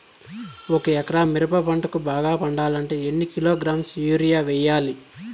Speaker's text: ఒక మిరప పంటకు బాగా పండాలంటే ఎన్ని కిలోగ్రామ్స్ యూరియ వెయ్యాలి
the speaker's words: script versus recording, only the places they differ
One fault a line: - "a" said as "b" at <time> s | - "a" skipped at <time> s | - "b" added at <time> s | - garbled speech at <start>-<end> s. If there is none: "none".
- "ఎకరా" added at 0.9 s